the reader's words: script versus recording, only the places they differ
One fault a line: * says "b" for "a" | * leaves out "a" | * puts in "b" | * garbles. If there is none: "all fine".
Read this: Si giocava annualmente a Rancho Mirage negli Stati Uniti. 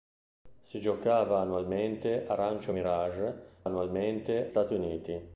* says "annualmente" for "negli"